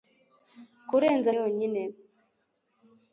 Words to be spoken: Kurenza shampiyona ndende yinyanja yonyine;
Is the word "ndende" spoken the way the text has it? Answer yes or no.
no